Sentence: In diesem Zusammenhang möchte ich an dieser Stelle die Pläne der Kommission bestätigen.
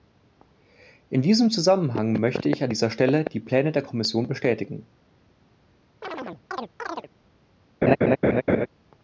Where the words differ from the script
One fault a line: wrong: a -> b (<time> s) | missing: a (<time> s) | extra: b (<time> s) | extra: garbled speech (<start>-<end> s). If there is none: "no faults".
no faults